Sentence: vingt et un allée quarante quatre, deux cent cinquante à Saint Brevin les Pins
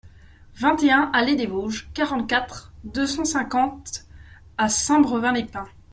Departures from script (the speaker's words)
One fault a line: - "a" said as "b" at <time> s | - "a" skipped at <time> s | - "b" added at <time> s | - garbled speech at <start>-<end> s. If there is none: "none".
- "des Vosges" added at 1.3 s